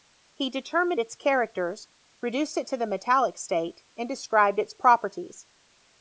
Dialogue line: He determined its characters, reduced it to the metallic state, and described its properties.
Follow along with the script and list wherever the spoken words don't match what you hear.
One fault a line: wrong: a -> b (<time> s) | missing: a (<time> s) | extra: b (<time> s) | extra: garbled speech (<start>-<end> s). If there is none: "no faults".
no faults